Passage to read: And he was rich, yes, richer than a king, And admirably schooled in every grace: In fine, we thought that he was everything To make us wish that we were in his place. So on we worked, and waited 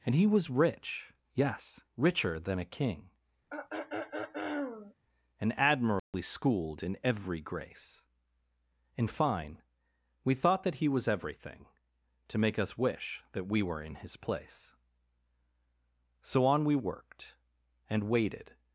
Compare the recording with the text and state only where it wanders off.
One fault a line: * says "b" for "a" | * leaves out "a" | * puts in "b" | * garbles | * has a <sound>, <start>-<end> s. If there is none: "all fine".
* has a throat clearing, 3.5-5.0 s
* has a dropout, 6.0-6.1 s